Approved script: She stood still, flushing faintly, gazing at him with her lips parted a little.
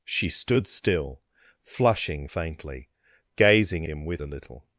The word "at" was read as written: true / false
false